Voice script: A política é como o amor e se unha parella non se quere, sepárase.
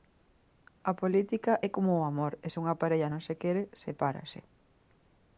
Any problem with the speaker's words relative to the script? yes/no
no